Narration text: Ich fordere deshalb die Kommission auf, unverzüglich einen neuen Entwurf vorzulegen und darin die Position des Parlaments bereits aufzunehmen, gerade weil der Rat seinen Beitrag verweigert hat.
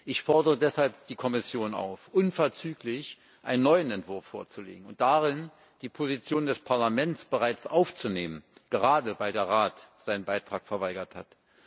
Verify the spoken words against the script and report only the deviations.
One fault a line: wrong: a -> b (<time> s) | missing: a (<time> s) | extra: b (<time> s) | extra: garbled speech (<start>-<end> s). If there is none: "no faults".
no faults